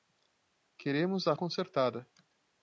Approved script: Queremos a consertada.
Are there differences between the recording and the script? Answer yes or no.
no